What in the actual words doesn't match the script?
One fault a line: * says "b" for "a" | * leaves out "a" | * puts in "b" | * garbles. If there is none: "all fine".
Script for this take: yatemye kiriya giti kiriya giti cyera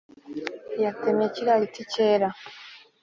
* leaves out "kiriya giti"